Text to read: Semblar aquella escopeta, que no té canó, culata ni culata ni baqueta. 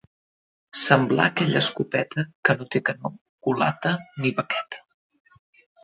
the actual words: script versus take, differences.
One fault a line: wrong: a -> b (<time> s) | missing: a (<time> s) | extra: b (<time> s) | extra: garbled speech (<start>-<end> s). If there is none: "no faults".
missing: culata ni (4.3 s)